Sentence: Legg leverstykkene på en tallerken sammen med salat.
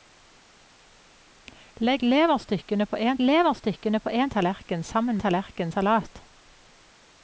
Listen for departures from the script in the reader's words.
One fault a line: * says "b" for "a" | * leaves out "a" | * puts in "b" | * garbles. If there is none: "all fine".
* puts in "leverstykkene på en"
* says "tallerken" for "med"